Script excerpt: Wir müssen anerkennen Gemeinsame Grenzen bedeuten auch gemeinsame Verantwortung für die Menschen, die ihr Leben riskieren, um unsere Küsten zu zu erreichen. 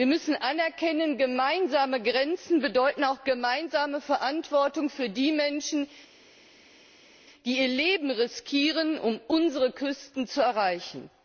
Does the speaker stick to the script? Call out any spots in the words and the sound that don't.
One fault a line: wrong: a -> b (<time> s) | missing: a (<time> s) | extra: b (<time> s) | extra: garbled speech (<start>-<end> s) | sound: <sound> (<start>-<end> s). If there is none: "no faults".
missing: zu (10.4 s)